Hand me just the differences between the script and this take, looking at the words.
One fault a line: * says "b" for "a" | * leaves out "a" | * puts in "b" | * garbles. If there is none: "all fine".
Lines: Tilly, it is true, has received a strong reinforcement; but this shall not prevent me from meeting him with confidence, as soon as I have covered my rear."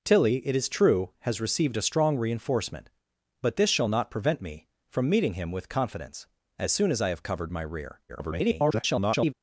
* garbles